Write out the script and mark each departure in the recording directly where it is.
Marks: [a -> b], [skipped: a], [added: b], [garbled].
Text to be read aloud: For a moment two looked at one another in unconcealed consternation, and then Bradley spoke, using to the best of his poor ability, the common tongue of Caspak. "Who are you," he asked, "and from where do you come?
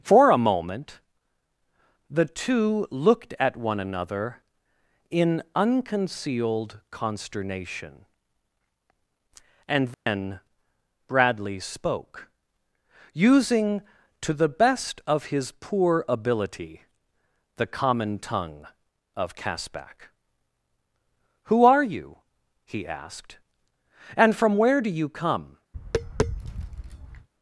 For a moment [added: the] two looked at one another in unconcealed consternation, and then Bradley spoke, using to the best of his poor ability, the common tongue of Caspak. "Who are you," he asked, "and from where do you come?